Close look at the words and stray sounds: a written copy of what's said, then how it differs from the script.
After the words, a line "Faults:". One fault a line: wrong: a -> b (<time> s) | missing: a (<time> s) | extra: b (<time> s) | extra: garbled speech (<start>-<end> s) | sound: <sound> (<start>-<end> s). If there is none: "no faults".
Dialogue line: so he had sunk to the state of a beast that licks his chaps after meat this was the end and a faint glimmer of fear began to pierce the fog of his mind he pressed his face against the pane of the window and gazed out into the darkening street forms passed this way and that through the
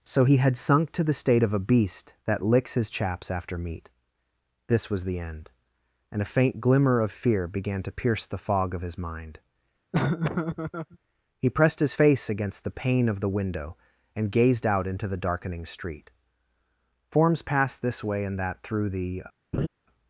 so he had sunk to the state of a beast that licks his chaps after meat this was the end and a faint glimmer of fear began to pierce the fog of his mind he pressed his face against the pane of the window and gazed out into the darkening street forms passed this way and that through the
Faults:
sound: laugh (9.9-11.0 s)
sound: laugh (19.5-19.7 s)